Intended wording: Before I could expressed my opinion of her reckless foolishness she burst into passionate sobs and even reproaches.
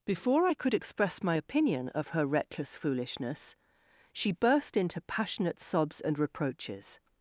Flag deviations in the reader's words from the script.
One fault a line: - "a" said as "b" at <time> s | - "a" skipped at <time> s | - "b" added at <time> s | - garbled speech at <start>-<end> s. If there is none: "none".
- "expressed" said as "express" at 0.7 s
- "even" skipped at 6.2 s